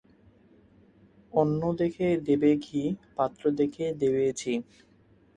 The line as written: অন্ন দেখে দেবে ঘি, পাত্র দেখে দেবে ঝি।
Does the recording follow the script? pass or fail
pass